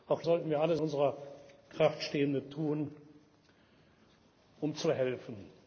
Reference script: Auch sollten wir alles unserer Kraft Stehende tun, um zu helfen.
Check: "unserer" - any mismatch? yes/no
no